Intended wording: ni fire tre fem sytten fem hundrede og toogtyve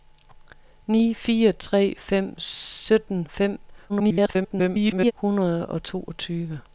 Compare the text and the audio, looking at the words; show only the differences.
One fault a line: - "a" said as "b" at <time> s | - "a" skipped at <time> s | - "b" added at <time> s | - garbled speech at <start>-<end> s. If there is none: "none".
- garbled speech at 3.9-5.1 s